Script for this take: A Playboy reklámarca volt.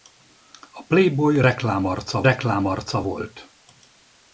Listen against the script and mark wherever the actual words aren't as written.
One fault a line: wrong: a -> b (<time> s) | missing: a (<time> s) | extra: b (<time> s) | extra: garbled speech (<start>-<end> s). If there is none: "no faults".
extra: reklámarca (2.2 s)